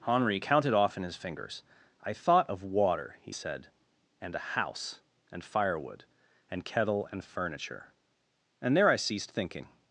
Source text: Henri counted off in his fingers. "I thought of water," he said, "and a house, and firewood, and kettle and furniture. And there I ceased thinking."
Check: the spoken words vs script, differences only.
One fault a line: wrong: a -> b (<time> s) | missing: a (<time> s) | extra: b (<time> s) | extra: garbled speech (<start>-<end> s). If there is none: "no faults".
no faults